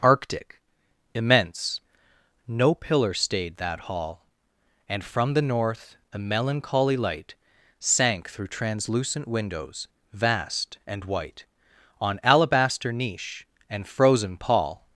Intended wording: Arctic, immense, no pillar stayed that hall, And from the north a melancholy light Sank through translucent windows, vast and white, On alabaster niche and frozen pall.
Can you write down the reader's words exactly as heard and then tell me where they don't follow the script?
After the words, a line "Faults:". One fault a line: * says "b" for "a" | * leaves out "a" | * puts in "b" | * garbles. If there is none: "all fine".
Arctic, immense, no pillar stayed that hall, And from the north a melancholy light Sank through translucent windows, vast and white, On alabaster niche and frozen pall.
Faults:
all fine